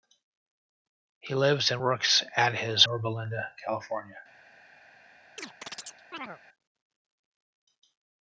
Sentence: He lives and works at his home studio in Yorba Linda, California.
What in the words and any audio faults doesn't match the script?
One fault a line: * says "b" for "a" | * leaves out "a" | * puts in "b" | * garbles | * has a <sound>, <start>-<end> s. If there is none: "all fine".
* leaves out "home studio in"
* has a chirp, 5.4-6.4 s